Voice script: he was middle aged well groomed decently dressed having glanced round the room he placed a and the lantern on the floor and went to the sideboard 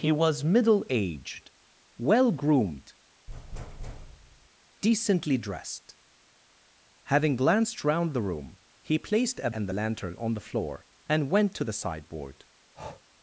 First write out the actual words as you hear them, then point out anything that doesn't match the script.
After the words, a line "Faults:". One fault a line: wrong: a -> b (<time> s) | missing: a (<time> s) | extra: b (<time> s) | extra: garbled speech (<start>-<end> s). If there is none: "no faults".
he was middle aged well groomed decently dressed having glanced round the room he placed a and the lantern on the floor and went to the sideboard
Faults:
no faults